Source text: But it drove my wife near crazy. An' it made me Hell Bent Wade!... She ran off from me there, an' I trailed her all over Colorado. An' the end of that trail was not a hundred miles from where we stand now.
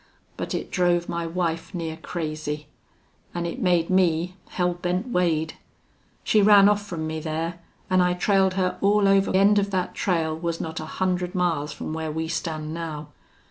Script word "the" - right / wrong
wrong